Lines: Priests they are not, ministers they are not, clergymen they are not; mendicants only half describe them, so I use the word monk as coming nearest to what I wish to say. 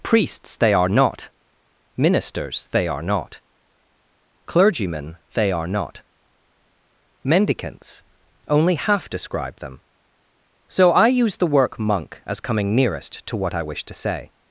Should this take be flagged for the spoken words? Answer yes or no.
yes